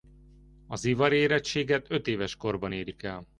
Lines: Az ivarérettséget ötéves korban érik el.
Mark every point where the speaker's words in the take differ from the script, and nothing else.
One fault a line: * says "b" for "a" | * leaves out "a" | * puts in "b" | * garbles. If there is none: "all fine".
all fine